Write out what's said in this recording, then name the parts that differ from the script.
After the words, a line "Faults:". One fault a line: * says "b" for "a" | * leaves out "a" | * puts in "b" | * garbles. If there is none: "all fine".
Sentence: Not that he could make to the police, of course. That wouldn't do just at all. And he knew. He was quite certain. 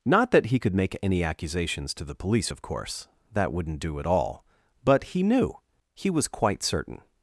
Not that he could make any accusations to the police, of course. That wouldn't do at all. But he knew. He was quite certain.
Faults:
* puts in "any accusations"
* leaves out "just"
* says "But" for "And"